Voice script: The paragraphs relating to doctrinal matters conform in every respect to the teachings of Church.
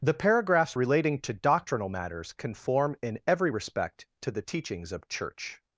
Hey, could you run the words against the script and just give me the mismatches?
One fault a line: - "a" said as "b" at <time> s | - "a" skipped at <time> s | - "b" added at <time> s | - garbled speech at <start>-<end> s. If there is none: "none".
none